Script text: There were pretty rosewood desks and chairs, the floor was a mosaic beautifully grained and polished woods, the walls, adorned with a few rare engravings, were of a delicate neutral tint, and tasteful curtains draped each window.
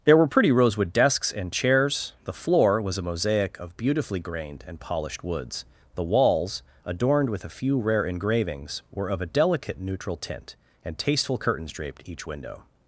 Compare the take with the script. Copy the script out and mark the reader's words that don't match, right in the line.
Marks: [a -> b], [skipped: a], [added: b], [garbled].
There were pretty rosewood desks and chairs, the floor was a mosaic [added: of] beautifully grained and polished woods, the walls, adorned with a few rare engravings, were of a delicate neutral tint, and tasteful curtains draped each window.